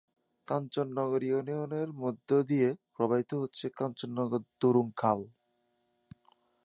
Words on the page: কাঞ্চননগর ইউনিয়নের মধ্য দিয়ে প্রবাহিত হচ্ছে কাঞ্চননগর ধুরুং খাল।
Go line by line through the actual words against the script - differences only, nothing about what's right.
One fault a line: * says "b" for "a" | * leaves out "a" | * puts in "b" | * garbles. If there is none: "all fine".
all fine